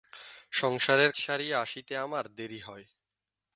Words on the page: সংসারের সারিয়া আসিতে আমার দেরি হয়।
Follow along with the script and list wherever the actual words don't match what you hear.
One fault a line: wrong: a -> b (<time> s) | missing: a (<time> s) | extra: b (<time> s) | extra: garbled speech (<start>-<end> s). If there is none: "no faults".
no faults